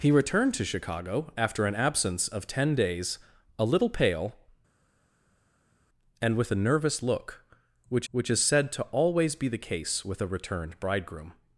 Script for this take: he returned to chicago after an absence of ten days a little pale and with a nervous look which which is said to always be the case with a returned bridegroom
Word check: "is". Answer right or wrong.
right